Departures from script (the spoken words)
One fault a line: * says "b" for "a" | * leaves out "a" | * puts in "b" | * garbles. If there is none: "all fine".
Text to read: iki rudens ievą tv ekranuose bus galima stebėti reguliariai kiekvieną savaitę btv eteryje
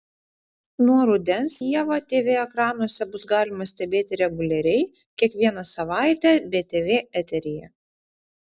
* says "nuo" for "iki"